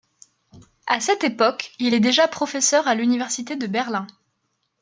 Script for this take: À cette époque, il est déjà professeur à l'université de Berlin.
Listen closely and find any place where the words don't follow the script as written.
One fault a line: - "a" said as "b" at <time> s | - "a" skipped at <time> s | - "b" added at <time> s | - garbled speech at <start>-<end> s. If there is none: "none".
none